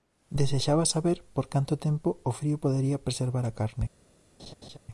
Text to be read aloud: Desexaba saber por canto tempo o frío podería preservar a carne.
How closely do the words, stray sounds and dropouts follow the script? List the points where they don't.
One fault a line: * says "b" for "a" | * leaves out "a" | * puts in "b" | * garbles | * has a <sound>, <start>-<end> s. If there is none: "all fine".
* has a laugh, 4.4-4.8 s